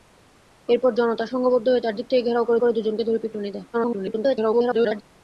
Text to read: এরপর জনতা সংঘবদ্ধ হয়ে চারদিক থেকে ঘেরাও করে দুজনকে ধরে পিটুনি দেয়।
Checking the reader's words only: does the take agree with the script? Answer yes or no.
no